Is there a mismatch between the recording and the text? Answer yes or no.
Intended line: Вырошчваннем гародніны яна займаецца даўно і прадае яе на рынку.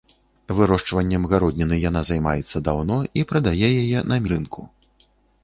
no